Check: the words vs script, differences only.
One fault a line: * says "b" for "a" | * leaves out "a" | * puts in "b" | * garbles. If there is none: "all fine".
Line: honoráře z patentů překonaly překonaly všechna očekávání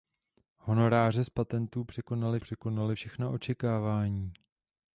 all fine